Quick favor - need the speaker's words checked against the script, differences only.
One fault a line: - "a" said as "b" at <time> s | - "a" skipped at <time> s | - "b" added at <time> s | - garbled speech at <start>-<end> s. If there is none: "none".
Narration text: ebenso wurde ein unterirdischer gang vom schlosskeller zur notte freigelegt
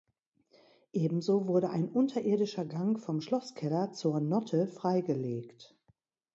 none